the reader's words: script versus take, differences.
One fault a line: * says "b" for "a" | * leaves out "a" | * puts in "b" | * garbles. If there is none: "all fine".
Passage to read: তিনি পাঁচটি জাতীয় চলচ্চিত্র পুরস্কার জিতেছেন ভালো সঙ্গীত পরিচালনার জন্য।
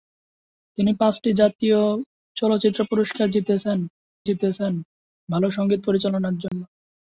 * puts in "জিতেছেন"